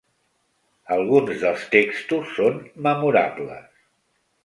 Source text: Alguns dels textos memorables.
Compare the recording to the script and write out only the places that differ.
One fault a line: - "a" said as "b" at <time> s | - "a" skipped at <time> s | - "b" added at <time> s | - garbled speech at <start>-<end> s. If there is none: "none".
- "són" added at 2.4 s